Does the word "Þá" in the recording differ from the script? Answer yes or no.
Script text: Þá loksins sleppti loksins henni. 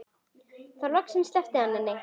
no